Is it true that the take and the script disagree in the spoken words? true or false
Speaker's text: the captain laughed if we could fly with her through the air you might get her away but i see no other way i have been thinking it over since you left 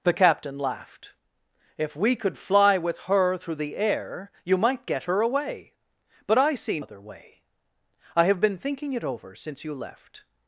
true